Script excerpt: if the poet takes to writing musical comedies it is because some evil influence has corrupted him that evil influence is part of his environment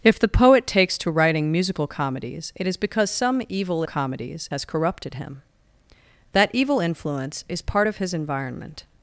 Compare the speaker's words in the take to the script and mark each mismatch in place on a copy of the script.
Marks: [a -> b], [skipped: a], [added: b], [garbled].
if the poet takes to writing musical comedies it is because some evil [influence -> comedies] has corrupted him that evil influence is part of his environment